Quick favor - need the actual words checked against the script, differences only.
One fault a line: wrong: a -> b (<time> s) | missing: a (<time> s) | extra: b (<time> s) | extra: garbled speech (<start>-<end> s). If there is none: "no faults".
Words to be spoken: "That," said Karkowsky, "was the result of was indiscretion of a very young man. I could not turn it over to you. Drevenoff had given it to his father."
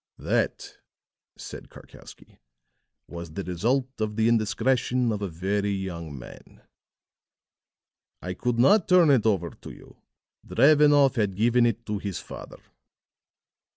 wrong: was -> the (4.2 s)